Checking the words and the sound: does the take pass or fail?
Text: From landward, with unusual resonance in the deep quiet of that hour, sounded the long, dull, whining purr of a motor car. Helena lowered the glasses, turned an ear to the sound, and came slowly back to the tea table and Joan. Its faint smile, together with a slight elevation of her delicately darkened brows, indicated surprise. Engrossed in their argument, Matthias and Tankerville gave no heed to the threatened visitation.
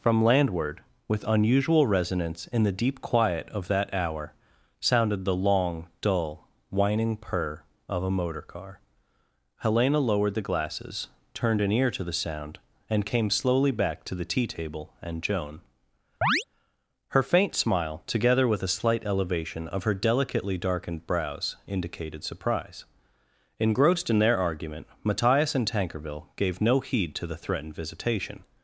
fail